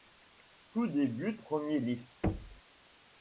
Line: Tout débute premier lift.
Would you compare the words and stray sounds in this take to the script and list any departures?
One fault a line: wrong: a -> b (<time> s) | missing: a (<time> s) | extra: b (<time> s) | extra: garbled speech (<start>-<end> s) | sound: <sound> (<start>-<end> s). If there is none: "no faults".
sound: thud (2.2-2.6 s)